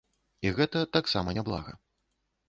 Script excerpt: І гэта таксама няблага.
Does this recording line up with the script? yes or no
yes